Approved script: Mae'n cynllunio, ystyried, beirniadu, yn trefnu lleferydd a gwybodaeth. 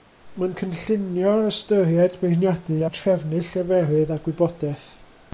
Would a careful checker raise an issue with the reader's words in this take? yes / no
no